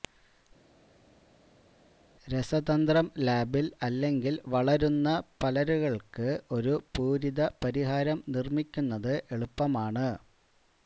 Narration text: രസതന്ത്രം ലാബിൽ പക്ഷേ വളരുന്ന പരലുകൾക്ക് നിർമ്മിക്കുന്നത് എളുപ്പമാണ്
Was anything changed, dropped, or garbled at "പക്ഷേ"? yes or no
yes